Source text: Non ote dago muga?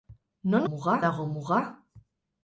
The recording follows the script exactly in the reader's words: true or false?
false